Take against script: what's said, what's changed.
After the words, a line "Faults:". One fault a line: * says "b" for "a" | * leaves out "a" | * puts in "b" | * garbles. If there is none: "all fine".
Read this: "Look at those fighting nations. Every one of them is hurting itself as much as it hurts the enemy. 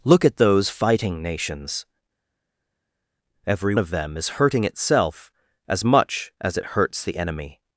"Look at those fighting nations. Every of them is hurting itself as much as it hurts the enemy.
Faults:
* leaves out "one"